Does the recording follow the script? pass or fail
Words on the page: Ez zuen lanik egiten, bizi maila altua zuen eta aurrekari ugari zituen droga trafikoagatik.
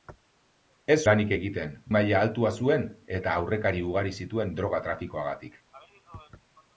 fail